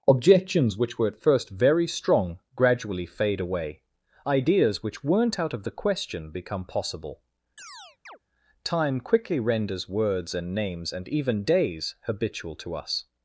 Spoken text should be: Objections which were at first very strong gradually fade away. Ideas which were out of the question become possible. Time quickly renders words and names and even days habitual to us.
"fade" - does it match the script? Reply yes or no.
yes